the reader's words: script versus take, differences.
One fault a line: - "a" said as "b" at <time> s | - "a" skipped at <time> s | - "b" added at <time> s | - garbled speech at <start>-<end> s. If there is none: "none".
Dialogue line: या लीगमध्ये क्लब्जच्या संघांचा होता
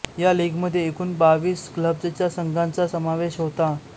- "एकूण बावीस" added at 0.9 s
- "समावेश" added at 2.9 s